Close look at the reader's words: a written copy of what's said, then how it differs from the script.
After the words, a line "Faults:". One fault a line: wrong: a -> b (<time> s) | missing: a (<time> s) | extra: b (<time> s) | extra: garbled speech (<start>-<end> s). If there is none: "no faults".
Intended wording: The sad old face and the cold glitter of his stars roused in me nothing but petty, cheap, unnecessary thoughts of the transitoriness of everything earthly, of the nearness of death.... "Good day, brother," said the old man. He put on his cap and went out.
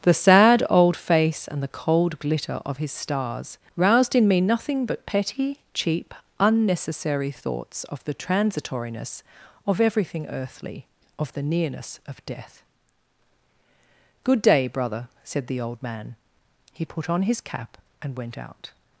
The sad old face and the cold glitter of his stars roused in me nothing but petty, cheap, unnecessary thoughts of the transitoriness of everything earthly, of the nearness of death.... "Good day, brother," said the old man. He put on his cap and went out.
Faults:
no faults